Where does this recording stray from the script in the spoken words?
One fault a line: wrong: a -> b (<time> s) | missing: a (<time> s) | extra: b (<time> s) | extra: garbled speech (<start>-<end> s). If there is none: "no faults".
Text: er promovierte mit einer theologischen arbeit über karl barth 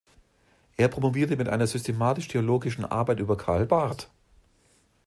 extra: systematisch (1.7 s)